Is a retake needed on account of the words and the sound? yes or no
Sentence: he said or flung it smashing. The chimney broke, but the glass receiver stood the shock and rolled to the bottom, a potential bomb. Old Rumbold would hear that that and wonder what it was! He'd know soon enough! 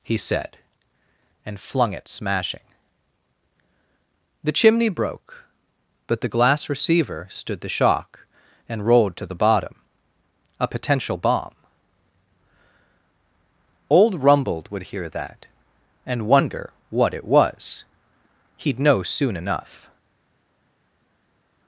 yes